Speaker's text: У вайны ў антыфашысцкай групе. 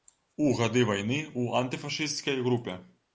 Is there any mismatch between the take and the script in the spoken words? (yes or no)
yes